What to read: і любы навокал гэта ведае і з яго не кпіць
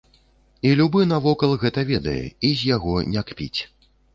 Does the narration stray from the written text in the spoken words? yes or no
no